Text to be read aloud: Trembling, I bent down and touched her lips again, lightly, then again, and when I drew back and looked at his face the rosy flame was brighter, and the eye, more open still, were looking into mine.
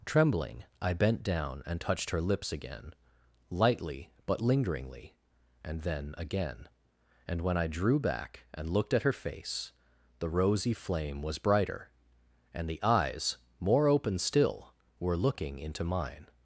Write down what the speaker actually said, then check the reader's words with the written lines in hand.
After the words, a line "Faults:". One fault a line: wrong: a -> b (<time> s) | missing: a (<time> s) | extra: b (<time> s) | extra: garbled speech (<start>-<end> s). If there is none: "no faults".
Trembling, I bent down and touched her lips again, lightly, but lingeringly, and then again, and when I drew back and looked at her face the rosy flame was brighter, and the eyes, more open still, were looking into mine.
Faults:
extra: but lingeringly and (4.2 s)
wrong: his -> her (9.0 s)
wrong: eye -> eyes (12.8 s)